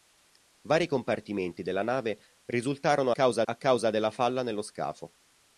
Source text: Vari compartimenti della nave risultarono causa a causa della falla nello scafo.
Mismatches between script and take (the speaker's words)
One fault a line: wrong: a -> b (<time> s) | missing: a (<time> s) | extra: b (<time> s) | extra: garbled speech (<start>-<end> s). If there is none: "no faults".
no faults